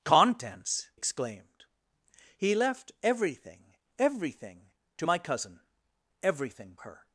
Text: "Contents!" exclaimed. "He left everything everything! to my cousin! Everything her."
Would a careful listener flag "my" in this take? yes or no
no